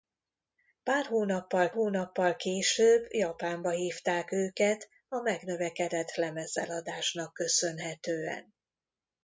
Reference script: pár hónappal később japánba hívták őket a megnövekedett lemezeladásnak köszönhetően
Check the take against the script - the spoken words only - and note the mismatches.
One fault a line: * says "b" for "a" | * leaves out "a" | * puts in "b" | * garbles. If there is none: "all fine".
* puts in "hónappal"